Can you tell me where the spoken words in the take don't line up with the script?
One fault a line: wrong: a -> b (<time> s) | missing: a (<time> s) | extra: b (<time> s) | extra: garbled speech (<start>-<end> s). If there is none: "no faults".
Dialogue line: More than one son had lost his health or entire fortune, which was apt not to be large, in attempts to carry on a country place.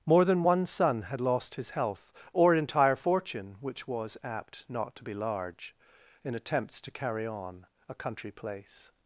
no faults